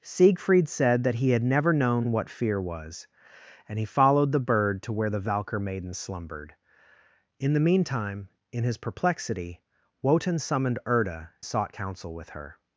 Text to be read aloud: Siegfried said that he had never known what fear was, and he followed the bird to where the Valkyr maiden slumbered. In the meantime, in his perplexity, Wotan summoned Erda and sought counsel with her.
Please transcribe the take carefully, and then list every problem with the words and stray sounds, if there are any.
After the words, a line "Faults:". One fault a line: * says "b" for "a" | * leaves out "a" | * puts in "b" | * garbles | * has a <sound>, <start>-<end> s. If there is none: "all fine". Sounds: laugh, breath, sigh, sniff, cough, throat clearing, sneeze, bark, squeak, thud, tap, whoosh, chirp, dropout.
Siegfried said that he had never known what fear was, and he followed the bird to where the Valkyr maiden slumbered. In the meantime, in his perplexity, Wotan summoned Erda sought counsel with her.
Faults:
* leaves out "and"